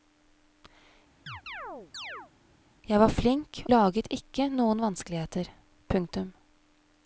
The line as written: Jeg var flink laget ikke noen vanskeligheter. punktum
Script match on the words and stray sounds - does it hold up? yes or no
no